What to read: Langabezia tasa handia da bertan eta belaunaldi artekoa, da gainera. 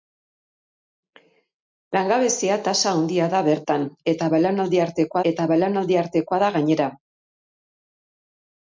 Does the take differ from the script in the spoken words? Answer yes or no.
yes